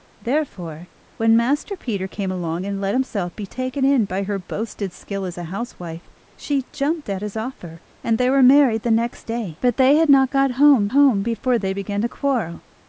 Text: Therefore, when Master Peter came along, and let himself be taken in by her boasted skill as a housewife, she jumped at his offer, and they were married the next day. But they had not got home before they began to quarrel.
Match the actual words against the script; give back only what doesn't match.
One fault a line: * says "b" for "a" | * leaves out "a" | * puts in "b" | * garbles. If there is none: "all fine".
* puts in "home"